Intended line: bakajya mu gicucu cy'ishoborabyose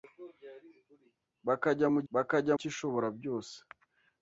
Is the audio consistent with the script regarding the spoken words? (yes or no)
no